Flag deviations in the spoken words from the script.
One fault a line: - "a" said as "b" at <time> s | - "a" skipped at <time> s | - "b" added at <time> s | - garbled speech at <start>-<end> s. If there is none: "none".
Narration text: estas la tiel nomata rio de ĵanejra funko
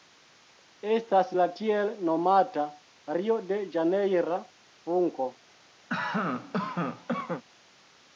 none